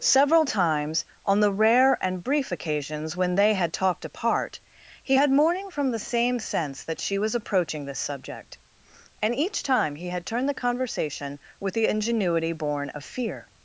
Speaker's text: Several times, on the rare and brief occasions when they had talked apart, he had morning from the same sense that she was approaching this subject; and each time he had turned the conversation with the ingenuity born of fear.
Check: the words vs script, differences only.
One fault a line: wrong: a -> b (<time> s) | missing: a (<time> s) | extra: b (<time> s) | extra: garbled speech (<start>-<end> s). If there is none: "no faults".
no faults